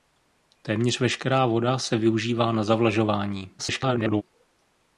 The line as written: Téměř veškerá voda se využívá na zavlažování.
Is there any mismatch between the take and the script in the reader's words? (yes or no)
yes